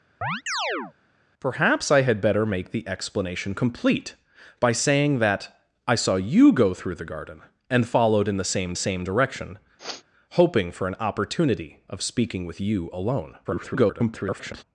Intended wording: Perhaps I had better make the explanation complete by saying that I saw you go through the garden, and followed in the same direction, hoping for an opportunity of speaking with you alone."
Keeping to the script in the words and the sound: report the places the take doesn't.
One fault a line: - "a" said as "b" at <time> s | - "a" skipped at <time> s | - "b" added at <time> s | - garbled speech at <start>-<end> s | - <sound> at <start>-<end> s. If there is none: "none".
- chirp at 0.2-0.9 s
- "same" added at 8.7 s
- sniff at 9.8-10.0 s
- garbled speech at 13.4-14.6 s